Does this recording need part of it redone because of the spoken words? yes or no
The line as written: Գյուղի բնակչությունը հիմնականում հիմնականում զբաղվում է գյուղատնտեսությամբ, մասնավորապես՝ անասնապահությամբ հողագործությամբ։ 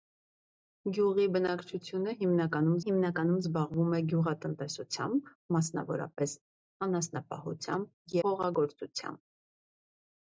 no